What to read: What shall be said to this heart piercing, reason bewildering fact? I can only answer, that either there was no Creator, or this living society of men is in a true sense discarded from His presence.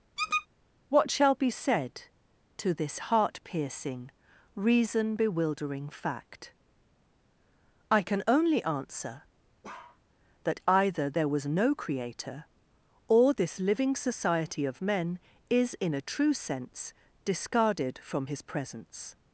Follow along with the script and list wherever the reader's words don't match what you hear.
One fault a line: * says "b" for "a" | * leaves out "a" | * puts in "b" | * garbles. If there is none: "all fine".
all fine